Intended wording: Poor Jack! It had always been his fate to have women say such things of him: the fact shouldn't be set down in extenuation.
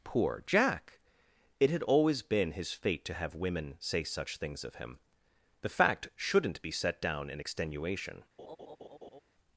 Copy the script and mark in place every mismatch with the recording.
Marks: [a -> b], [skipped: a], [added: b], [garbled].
Poor Jack! It had always been his fate to have women say such things of him: the fact shouldn't be set down in extenuation.